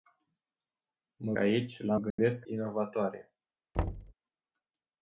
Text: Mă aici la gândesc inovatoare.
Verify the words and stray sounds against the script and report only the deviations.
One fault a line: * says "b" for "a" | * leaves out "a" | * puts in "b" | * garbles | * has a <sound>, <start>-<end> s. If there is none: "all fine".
* has a dropout, 2.1-2.2 s
* has a thud, 3.7-4.1 s